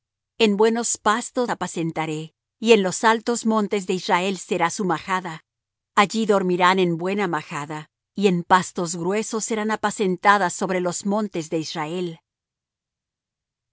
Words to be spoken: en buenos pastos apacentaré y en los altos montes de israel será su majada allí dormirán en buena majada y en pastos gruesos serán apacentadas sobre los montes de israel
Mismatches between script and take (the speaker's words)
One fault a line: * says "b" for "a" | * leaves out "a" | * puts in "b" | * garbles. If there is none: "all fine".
all fine